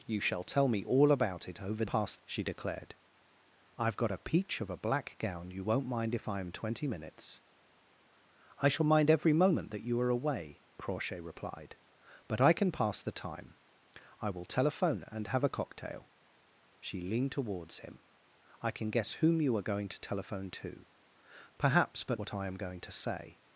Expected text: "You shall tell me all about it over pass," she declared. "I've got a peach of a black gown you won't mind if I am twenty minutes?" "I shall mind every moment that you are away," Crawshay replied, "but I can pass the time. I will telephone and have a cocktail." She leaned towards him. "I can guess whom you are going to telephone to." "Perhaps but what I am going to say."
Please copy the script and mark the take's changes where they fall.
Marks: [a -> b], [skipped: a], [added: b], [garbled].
"You shall tell me all about it over pass," she declared. "I've got a peach of a black gown you won't mind if I am twenty minutes?" "I shall mind every moment that you are away," Crawshay replied, "but I can pass the time. I will telephone and have a cocktail." She leaned towards him. "I can guess whom you are going to telephone to." "Perhaps but what I am going to say."